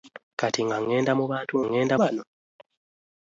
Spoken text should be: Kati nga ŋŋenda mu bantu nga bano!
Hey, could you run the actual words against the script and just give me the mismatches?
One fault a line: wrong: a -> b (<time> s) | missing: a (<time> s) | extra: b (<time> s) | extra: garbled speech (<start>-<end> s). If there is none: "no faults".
wrong: nga -> ŋŋenda (1.7 s)